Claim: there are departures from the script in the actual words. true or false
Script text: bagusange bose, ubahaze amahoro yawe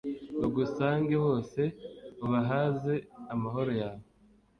false